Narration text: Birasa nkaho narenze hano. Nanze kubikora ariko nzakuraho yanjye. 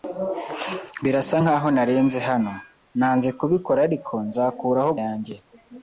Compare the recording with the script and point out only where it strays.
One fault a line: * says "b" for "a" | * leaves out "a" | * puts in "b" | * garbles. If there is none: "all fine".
all fine